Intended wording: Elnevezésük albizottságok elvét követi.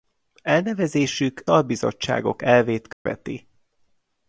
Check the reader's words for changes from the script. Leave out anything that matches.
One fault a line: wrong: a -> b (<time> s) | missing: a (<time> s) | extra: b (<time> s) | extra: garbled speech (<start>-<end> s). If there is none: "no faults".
no faults